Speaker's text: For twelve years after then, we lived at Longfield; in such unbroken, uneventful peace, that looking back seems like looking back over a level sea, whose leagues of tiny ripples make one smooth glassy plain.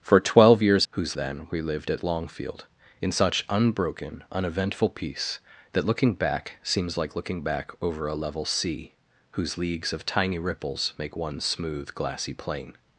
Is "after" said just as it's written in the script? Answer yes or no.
no